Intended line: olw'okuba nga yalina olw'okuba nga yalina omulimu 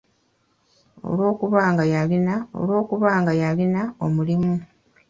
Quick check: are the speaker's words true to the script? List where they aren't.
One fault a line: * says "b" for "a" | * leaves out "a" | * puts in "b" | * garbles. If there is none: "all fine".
all fine